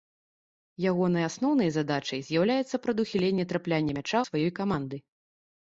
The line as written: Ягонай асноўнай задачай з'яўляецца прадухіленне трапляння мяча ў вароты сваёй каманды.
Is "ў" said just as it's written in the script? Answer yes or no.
no